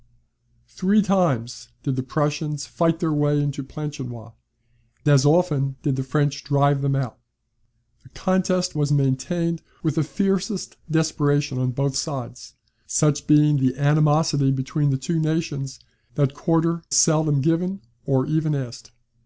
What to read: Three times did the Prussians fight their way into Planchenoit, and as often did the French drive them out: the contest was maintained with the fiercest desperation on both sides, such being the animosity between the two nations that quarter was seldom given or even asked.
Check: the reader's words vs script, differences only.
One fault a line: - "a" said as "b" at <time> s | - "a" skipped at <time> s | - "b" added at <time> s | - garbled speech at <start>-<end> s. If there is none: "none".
- "and" skipped at 4.3 s
- "was" skipped at 16.8 s